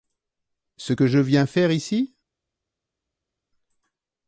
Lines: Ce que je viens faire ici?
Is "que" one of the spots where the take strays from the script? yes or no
no